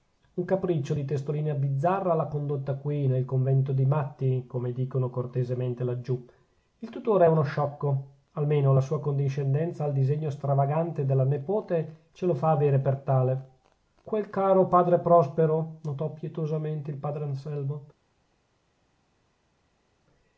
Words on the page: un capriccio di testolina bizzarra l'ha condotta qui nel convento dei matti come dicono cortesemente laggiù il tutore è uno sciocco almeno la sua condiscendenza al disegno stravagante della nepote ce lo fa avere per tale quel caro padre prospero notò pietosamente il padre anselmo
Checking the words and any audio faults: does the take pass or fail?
pass